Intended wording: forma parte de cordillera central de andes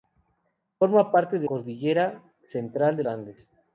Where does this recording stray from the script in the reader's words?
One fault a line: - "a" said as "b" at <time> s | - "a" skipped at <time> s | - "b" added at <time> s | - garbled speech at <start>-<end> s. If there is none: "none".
none